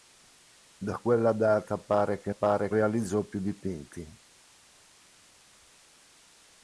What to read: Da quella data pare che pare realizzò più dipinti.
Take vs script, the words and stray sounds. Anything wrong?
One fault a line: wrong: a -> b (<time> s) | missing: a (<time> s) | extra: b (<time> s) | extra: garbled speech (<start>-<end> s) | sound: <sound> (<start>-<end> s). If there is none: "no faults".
no faults